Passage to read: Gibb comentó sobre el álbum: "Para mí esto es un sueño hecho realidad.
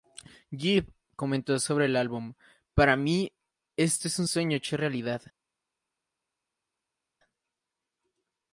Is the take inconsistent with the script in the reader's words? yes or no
no